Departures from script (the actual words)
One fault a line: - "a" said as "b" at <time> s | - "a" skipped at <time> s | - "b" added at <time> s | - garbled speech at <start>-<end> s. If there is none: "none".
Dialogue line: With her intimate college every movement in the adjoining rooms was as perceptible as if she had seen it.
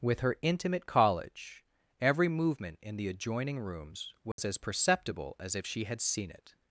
none